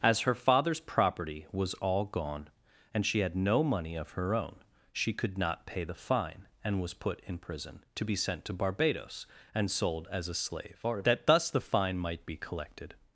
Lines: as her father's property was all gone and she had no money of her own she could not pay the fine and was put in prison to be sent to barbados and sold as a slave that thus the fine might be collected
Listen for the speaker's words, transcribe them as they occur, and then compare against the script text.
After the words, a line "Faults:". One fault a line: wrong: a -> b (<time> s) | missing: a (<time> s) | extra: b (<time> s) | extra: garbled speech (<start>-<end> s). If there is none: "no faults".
as her father's property was all gone and she had no money of her own she could not pay the fine and was put in prison to be sent to barbados and sold as a slave that thus the fine might be collected
Faults:
no faults